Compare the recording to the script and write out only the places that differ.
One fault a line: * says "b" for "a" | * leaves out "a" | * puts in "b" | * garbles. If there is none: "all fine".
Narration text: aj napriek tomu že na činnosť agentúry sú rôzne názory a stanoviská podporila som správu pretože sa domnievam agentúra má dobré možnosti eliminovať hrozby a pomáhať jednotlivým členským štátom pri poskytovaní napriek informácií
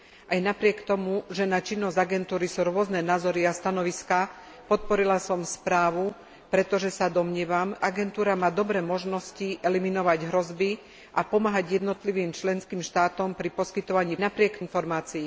all fine